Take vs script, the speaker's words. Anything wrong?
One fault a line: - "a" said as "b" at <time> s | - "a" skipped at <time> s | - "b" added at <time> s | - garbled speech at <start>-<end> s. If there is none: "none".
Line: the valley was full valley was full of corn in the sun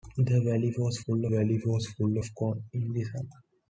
none